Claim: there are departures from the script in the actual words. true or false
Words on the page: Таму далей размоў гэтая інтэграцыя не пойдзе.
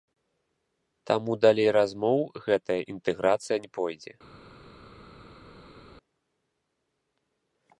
false